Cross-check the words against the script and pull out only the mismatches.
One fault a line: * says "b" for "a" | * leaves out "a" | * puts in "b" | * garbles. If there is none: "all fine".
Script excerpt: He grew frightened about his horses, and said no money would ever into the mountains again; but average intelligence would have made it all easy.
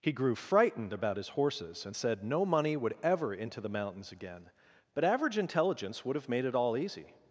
all fine